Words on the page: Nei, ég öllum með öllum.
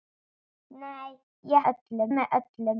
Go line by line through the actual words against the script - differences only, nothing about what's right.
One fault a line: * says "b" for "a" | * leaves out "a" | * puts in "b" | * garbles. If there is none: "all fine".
all fine